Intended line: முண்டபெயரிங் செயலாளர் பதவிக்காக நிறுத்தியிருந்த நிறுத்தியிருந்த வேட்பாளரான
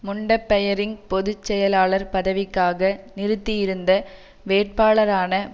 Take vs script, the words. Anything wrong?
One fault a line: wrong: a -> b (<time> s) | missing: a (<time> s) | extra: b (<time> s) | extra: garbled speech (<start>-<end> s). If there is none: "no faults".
extra: பொது (1.1 s)
missing: நிறுத்தியிருந்த (3.9 s)